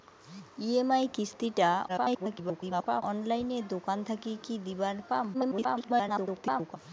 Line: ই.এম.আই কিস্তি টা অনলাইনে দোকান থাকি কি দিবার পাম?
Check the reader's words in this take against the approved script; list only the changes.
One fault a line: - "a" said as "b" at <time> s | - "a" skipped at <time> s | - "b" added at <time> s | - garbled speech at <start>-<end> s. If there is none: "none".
- garbled speech at 1.9-3.0 s
- garbled speech at 5.3-6.8 s